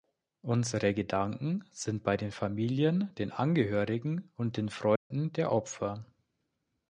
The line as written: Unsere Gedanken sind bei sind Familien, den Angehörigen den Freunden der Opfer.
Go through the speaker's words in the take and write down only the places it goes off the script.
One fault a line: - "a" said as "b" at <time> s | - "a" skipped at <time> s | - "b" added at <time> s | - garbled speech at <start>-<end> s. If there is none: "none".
- "sind" said as "den" at 2.2 s
- "und" added at 4.4 s